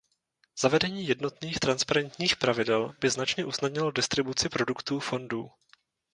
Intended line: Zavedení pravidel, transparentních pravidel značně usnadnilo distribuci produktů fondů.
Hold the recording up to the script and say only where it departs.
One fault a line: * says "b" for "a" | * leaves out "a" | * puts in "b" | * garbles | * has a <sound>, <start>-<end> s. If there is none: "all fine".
* says "jednotných" for "pravidel"
* puts in "by"